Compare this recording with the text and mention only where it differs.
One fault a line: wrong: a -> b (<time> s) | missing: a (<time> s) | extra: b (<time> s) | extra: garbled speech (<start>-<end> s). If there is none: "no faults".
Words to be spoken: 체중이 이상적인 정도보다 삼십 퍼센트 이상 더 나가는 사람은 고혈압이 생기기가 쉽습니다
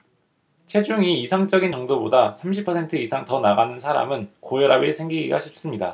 no faults